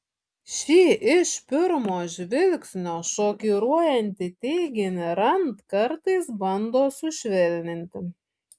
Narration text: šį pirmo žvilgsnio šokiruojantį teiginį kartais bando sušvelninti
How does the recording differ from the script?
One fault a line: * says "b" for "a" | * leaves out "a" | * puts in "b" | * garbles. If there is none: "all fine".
* puts in "iš"
* puts in "rand"